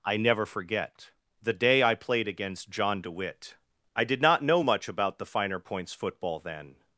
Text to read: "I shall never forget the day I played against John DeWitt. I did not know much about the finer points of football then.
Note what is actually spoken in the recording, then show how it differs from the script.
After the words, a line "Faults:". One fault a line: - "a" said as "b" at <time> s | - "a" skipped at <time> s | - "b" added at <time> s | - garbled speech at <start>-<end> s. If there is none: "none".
"I never forget the day I played against John DeWitt. I did not know much about the finer points football then.
Faults:
- "shall" skipped at 0.2 s
- "of" skipped at 5.9 s